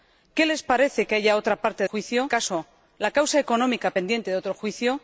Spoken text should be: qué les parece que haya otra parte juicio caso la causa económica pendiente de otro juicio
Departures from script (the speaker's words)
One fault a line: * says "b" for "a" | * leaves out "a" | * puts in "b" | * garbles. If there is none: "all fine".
all fine